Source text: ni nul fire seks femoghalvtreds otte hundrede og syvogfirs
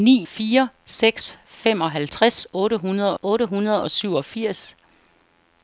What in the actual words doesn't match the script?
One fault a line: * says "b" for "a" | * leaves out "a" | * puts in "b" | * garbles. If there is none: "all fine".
* leaves out "nul"
* puts in "otte hundrede"